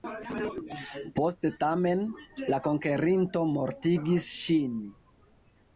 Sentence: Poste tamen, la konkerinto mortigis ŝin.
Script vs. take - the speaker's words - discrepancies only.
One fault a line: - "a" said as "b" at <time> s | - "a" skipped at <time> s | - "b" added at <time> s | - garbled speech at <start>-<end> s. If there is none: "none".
none